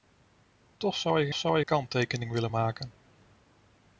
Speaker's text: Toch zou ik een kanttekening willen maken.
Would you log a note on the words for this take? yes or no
yes